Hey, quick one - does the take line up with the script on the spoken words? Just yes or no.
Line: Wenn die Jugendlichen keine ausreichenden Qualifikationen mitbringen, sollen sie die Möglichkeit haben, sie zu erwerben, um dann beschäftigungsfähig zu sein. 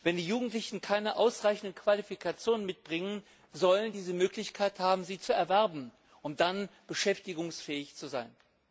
yes